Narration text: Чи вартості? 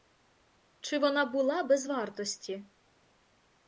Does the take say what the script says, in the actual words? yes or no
no